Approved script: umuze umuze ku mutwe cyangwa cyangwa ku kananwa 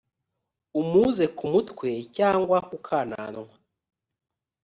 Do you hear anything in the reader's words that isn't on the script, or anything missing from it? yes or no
yes